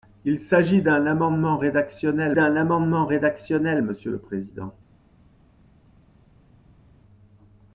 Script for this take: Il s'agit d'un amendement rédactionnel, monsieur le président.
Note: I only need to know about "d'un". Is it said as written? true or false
true